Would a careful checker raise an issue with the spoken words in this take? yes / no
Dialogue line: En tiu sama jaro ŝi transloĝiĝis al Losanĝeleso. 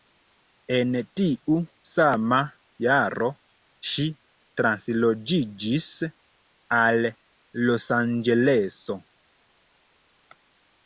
no